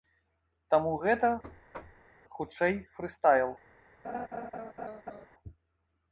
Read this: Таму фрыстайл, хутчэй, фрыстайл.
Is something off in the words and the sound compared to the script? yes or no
yes